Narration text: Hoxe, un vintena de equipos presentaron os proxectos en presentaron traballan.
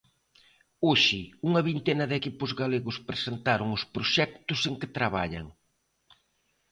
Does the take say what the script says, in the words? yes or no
no